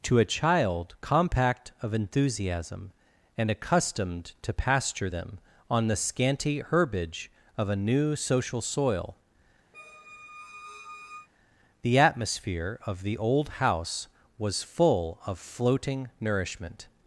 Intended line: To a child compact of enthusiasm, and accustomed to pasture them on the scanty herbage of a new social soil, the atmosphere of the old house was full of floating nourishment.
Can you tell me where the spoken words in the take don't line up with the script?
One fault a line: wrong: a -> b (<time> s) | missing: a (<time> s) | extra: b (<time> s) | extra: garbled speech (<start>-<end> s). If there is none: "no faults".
no faults